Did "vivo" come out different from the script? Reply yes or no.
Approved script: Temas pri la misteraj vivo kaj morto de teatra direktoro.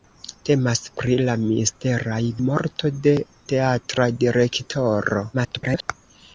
yes